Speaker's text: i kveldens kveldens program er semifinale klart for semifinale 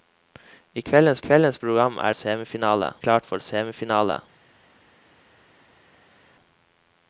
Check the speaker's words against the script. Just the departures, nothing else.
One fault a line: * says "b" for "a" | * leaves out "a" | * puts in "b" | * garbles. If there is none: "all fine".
all fine